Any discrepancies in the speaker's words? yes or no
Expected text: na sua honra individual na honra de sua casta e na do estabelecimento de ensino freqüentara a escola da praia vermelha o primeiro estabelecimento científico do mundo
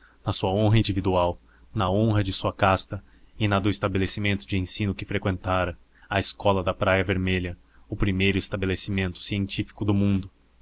yes